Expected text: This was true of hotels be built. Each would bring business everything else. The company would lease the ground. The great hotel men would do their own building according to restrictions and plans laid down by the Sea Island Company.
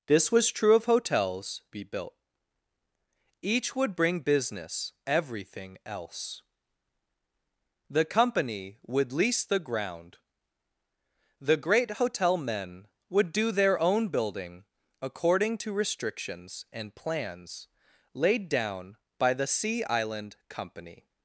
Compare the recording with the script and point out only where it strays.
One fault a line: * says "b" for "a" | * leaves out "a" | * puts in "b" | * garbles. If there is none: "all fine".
all fine